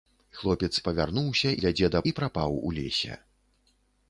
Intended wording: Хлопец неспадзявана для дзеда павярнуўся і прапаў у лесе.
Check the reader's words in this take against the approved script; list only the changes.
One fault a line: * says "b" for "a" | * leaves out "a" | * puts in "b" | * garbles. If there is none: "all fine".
* says "павярнуўся" for "неспадзявана"
* leaves out "павярнуўся"